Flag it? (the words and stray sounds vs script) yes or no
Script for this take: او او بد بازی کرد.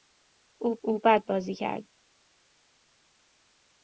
no